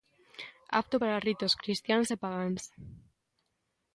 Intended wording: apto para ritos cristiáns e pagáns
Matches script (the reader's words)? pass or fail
pass